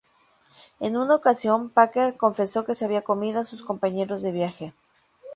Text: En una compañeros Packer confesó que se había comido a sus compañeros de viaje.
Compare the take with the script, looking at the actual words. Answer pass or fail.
fail